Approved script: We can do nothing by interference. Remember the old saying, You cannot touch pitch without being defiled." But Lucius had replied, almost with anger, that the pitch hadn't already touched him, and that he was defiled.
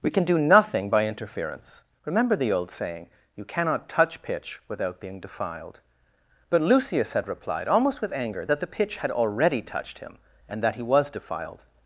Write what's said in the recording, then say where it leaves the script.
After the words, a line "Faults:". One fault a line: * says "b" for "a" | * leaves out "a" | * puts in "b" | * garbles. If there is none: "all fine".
We can do nothing by interference. Remember the old saying, You cannot touch pitch without being defiled." But Lucius had replied, almost with anger, that the pitch had already touched him, and that he was defiled.
Faults:
* says "had" for "hadn't"